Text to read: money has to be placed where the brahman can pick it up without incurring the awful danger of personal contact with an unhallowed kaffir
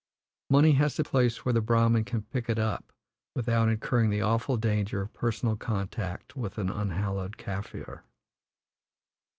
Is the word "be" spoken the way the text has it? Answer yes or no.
no